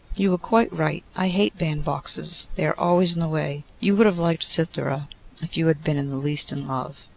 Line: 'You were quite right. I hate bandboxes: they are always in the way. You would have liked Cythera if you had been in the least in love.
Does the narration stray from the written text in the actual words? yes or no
no